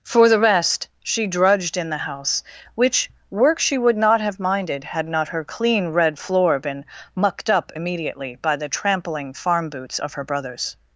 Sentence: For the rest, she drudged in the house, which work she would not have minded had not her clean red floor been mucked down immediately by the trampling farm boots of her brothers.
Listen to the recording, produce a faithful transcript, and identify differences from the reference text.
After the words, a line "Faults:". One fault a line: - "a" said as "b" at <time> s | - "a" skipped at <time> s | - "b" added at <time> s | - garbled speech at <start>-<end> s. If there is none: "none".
For the rest, she drudged in the house, which work she would not have minded had not her clean red floor been mucked up immediately by the trampling farm boots of her brothers.
Faults:
- "down" said as "up" at 7.5 s